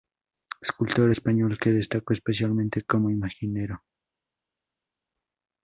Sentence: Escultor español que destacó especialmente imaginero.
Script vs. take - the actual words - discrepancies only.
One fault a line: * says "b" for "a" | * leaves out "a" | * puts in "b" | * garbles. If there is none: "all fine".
* puts in "como"